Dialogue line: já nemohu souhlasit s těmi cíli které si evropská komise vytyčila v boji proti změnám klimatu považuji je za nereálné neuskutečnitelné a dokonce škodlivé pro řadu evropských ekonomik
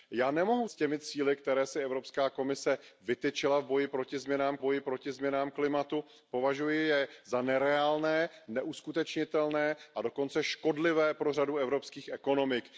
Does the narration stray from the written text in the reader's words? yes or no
yes